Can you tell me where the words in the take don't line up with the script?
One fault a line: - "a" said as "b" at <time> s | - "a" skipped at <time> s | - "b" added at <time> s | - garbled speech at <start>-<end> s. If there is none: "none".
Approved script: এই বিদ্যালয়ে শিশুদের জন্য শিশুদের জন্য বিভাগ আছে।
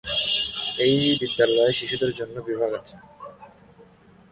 - "শিশুদের জন্য" skipped at 2.3 s